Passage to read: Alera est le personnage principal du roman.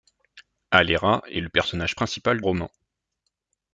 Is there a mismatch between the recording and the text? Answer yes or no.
yes